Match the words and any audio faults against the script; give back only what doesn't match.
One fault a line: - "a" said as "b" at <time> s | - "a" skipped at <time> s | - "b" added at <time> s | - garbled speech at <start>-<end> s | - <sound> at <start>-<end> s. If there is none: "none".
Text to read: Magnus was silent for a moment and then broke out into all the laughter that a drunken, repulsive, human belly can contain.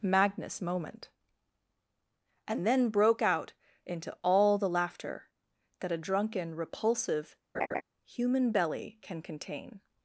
- "was silent for a" skipped at 0.6 s
- laugh at 7.5-7.8 s